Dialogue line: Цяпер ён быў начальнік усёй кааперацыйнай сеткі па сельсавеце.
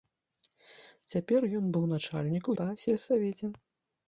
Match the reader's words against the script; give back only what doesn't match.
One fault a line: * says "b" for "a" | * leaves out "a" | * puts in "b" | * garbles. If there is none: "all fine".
* leaves out "усёй кааперацыйнай сеткі"